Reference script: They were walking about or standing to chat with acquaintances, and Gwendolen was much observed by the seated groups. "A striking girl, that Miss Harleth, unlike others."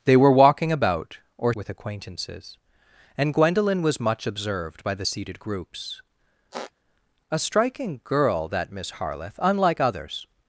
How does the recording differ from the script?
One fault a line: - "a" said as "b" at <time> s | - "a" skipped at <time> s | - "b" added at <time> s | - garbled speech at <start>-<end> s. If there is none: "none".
- "standing to chat" skipped at 1.5 s